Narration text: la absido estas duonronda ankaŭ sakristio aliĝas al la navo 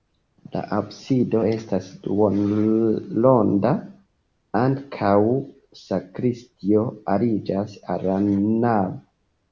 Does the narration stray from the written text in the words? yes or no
no